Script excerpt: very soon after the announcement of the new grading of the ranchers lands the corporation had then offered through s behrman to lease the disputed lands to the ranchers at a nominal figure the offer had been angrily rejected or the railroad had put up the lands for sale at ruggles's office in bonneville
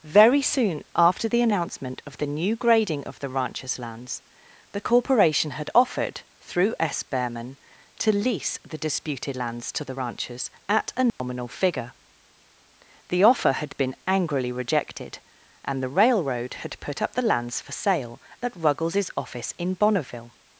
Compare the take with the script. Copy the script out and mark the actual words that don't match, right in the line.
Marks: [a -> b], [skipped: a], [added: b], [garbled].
very soon after the announcement of the new grading of the ranchers lands the corporation had [skipped: then] offered through s behrman to lease the disputed lands to the ranchers at a nominal figure the offer had been angrily rejected [or -> and] the railroad had put up the lands for sale at ruggles's office in bonneville